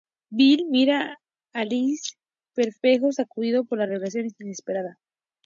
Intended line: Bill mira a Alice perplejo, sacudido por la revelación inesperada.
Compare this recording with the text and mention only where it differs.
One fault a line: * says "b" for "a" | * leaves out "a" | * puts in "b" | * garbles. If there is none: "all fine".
all fine